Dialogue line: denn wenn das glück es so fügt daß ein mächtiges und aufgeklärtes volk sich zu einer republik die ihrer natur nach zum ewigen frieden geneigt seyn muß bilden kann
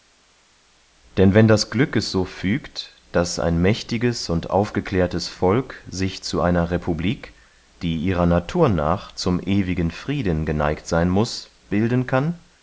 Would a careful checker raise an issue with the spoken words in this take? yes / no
no